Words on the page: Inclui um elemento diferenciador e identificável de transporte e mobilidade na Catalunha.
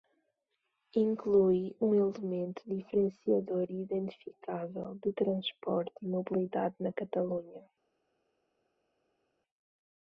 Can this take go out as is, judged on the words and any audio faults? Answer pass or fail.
pass